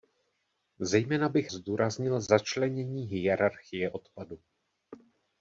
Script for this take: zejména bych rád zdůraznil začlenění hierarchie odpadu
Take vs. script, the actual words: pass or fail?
fail